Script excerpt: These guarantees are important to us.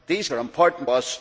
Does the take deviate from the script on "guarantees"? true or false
true